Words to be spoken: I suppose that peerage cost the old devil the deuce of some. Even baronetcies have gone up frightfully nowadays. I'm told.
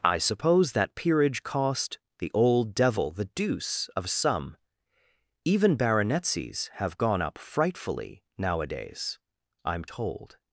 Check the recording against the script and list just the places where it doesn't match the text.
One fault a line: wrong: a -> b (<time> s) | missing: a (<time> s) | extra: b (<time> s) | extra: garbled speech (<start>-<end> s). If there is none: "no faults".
no faults